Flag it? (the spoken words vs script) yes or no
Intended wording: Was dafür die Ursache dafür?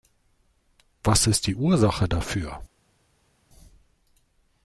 yes